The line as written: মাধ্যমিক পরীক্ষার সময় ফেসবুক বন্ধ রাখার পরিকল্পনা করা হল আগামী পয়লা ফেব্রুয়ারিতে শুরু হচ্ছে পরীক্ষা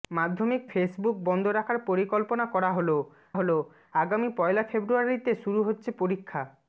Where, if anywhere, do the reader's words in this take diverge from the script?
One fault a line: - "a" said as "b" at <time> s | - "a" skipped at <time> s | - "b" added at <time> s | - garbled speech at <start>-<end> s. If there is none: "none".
- "পরীক্ষার সময়" skipped at 0.6 s
- "হল" added at 3.3 s